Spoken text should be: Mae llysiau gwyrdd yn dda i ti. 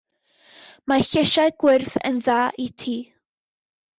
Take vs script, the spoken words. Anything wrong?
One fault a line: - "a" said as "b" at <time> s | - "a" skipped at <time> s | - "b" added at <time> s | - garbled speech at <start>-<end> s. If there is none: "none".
none